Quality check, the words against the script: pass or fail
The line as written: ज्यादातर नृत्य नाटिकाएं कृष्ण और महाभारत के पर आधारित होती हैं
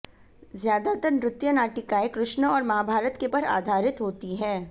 pass